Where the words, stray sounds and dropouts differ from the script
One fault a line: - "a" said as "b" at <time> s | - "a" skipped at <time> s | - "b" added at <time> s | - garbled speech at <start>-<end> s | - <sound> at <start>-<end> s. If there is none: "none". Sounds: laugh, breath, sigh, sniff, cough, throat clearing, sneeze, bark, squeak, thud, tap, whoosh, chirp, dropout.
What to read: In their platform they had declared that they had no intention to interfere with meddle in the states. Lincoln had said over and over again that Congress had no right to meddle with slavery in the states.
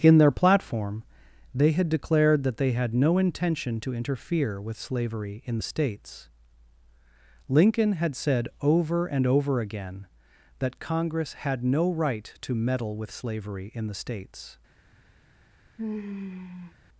- "meddle" said as "slavery" at 4.8 s
- sigh at 15.8-16.7 s